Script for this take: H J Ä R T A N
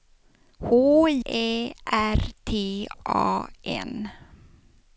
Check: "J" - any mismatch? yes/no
yes